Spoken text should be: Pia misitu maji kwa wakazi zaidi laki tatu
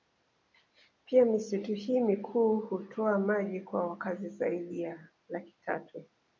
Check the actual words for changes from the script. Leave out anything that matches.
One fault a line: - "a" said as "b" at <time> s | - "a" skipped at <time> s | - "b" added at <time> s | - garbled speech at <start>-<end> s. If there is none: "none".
- "hii mikuu hutoa" added at 1.7 s
- "ya" added at 4.8 s